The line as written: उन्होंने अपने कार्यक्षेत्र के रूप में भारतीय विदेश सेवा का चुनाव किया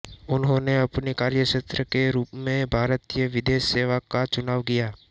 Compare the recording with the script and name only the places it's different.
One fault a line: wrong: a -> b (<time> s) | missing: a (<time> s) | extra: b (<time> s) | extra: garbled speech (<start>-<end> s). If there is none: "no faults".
no faults